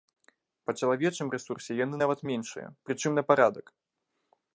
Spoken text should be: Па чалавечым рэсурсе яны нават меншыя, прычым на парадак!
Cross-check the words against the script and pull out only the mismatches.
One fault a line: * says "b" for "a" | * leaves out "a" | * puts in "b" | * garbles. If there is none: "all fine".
all fine